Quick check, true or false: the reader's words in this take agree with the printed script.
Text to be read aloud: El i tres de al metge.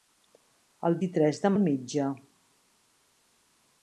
true